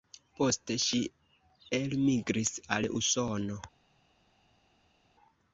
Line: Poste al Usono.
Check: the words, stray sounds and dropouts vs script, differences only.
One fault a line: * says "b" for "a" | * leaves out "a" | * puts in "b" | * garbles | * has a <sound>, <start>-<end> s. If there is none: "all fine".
* puts in "ŝi elmigris"